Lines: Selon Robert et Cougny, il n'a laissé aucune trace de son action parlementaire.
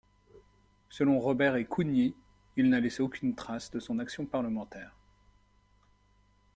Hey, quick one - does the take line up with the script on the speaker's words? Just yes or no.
yes